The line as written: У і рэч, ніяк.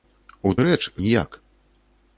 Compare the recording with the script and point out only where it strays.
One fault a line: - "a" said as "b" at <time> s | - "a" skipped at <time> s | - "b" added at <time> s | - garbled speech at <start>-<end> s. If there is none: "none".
none